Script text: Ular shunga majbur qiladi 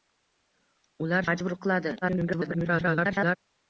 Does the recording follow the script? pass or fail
fail